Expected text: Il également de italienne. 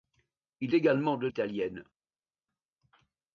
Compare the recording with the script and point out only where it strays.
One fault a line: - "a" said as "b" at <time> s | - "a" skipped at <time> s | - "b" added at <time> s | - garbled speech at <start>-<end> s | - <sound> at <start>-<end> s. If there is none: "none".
none